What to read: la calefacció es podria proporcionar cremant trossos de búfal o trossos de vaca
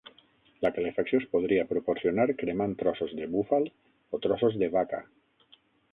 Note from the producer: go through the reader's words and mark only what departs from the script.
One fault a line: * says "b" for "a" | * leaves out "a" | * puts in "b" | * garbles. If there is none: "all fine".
all fine